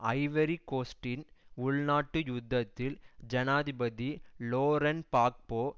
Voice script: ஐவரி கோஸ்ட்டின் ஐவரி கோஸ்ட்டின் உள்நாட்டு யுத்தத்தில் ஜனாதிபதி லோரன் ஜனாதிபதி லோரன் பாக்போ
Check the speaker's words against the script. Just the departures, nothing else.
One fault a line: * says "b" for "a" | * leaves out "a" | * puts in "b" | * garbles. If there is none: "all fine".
* leaves out "ஐவரி கோஸ்ட்டின்"
* leaves out "ஜனாதிபதி லோரன்"